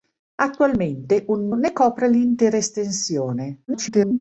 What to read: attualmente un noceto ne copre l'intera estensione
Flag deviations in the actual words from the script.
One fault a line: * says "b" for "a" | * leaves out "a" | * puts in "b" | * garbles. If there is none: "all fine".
* leaves out "noceto"
* garbles